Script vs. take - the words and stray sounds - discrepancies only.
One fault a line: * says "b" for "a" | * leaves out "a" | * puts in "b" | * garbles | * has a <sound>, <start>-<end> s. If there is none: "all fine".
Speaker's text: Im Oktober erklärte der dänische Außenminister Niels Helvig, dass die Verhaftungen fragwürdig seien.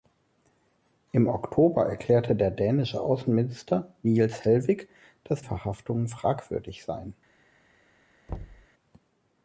* leaves out "die"
* has a thud, 8.3-8.7 s